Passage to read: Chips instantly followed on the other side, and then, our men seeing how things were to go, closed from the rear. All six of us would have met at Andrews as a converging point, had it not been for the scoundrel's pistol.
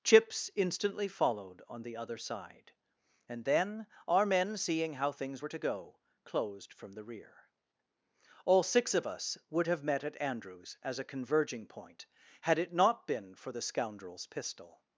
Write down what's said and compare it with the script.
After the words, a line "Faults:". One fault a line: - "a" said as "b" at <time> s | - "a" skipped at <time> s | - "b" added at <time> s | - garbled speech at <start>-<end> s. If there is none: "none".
Chips instantly followed on the other side, and then, our men seeing how things were to go, closed from the rear. All six of us would have met at Andrews as a converging point, had it not been for the scoundrel's pistol.
Faults:
none